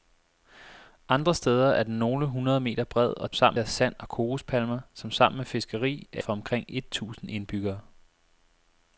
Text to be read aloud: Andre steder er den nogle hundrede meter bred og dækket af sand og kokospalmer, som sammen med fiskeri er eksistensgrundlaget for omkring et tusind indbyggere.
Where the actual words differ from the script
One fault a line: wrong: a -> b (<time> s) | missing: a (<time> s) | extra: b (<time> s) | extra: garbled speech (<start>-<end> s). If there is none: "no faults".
wrong: dækket -> sammen (3.3 s)
missing: eksistensgrundlaget (6.2 s)